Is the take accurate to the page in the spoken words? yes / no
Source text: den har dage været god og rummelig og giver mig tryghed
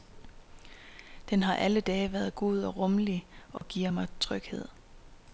no